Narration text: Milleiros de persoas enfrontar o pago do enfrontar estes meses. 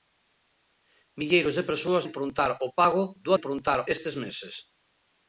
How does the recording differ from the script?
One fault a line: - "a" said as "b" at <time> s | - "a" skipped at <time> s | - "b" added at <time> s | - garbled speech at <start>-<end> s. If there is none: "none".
none